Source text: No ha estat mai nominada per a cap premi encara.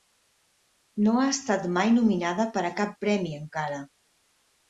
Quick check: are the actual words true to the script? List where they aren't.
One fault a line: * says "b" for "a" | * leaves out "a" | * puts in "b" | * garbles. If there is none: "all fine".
all fine